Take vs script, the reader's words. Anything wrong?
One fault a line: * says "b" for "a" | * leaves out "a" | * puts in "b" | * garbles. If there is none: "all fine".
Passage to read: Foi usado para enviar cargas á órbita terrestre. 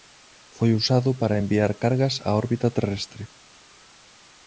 all fine